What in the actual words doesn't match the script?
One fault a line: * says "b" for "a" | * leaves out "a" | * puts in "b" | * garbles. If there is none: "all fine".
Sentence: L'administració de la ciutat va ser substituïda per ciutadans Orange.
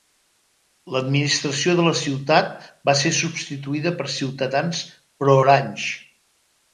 * puts in "pro"